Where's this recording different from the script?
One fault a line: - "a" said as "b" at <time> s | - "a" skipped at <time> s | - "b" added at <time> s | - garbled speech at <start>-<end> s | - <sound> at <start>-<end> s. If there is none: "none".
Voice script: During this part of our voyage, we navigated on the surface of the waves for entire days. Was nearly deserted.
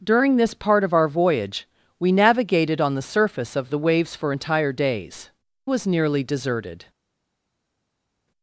none